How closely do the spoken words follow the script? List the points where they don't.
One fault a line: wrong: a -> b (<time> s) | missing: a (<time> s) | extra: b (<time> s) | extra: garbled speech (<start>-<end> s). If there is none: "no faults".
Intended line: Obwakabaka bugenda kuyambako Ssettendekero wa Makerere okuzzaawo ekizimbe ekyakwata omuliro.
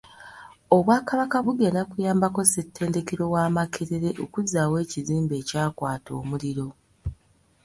no faults